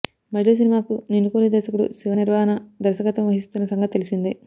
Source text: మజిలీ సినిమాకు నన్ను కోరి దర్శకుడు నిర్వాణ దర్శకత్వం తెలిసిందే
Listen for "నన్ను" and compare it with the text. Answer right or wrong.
wrong